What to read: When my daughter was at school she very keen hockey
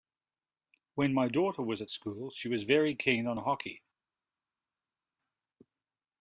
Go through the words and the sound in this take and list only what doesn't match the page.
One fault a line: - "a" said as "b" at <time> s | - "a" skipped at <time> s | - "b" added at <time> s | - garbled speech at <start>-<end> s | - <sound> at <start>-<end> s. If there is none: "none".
- "was" added at 2.5 s
- "on" added at 3.3 s